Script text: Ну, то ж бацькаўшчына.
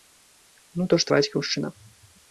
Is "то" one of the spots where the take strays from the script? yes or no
no